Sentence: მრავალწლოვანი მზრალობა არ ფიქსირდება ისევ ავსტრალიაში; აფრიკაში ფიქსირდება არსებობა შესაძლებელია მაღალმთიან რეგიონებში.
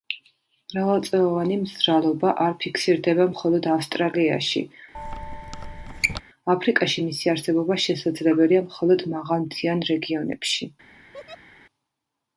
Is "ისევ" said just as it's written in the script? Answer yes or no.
no